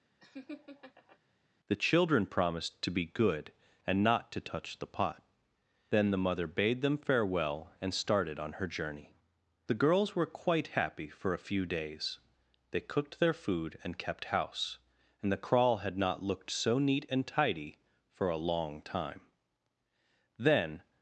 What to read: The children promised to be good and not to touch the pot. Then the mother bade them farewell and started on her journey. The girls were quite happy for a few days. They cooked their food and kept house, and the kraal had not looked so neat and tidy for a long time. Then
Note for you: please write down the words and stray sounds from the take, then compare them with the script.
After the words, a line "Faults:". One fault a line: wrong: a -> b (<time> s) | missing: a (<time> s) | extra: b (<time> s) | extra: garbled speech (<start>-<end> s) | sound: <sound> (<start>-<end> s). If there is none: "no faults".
The children promised to be good and not to touch the pot. Then the mother bade them farewell and started on her journey. The girls were quite happy for a few days. They cooked their food and kept house, and the kraal had not looked so neat and tidy for a long time. Then
Faults:
sound: laugh (0.2-1.2 s)